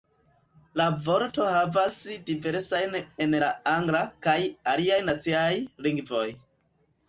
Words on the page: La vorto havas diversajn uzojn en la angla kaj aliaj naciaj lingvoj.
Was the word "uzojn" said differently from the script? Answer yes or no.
yes